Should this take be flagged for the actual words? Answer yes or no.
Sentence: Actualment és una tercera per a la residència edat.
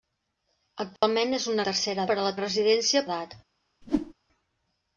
no